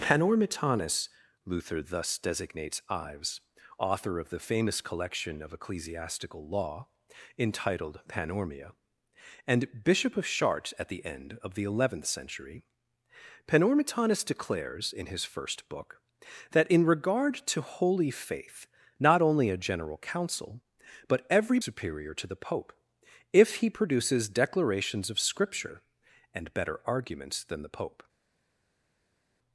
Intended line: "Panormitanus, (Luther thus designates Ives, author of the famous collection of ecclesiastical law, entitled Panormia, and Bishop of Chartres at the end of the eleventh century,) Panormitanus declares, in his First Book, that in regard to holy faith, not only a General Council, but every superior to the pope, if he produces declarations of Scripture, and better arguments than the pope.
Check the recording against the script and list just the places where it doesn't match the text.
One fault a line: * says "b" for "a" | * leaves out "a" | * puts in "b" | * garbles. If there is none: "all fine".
all fine